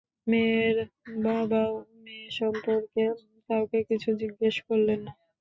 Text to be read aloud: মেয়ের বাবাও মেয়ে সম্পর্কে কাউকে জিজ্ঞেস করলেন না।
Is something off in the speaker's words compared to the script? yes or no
yes